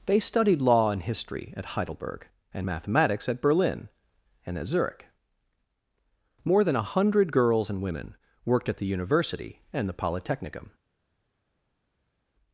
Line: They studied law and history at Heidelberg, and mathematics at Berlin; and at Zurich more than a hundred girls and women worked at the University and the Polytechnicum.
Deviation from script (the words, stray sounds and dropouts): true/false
false